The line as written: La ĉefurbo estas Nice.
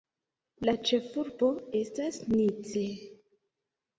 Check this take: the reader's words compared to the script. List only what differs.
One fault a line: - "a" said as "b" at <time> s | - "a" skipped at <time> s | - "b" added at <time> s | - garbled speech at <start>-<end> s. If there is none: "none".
none